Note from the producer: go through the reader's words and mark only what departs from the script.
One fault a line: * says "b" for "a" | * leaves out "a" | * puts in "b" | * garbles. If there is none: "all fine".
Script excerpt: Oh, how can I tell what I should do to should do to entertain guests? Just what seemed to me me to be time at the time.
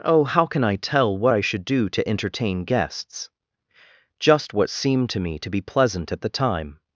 * leaves out "should do to"
* leaves out "me"
* says "pleasant" for "time"